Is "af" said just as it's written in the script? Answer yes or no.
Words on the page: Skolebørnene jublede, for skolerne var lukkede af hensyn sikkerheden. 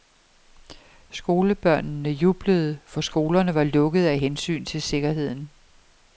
yes